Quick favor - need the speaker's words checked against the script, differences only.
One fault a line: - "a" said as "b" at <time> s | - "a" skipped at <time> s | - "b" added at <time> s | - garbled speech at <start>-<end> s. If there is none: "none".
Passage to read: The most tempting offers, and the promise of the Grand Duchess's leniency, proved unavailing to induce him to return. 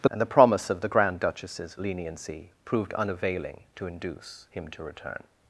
- "most tempting offers" skipped at 0.1 s